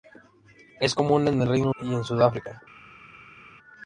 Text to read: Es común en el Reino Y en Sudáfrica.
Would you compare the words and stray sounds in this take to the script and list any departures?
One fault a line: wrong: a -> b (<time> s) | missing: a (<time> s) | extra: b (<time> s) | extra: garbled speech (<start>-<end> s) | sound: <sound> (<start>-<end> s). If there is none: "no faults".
no faults